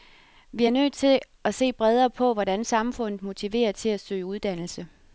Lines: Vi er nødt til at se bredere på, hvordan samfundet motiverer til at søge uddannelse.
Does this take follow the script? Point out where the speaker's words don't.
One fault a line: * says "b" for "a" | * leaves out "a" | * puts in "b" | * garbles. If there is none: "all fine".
all fine